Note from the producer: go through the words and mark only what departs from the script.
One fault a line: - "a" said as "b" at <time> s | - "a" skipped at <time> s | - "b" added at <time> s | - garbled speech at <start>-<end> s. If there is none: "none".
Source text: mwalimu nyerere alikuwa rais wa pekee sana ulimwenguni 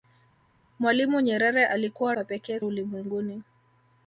- "rais" skipped at 2.2 s
- "sana" skipped at 2.6 s